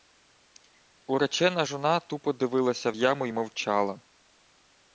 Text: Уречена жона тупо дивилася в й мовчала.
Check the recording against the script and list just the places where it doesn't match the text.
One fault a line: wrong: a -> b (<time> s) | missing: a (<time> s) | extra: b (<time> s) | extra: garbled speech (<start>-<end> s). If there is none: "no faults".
extra: яму (2.9 s)